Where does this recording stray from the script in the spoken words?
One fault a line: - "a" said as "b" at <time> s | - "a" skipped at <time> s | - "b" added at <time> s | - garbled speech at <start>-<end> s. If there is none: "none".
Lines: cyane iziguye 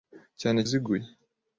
none